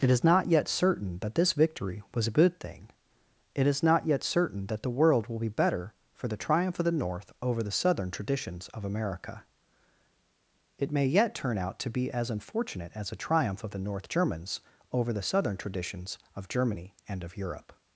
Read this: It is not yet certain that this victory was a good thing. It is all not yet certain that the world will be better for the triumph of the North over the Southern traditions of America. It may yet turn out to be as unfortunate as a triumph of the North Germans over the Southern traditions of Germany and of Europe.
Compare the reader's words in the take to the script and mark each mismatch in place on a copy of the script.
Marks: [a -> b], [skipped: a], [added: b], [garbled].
It is not yet certain that this victory was a good thing. It is [skipped: all] not yet certain that the world will be better for the triumph of the North over the Southern traditions of America. It may yet turn out to be as unfortunate as a triumph of the North Germans over the Southern traditions of Germany and of Europe.